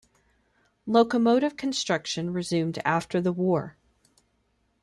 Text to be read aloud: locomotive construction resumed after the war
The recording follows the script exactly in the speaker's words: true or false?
true